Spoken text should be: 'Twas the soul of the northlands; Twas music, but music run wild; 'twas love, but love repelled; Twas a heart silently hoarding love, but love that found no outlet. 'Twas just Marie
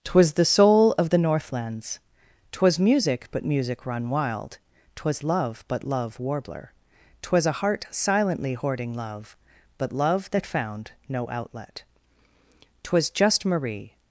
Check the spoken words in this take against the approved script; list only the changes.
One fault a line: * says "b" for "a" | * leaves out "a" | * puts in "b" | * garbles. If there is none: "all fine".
* says "warbler" for "repelled"